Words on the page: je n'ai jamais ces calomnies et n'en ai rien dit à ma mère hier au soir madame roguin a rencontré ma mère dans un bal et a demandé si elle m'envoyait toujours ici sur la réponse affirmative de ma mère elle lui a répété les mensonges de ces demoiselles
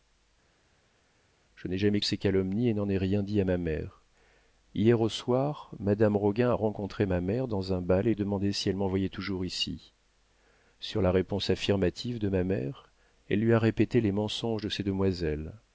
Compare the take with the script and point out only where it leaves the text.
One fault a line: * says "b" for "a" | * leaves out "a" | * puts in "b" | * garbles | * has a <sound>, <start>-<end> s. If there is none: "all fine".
all fine